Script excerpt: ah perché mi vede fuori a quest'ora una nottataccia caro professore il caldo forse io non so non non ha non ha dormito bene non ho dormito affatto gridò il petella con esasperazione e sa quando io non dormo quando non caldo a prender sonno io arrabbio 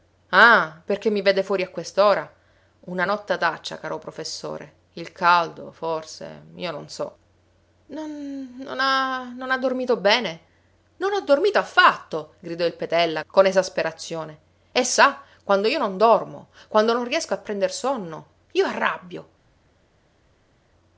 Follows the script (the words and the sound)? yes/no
no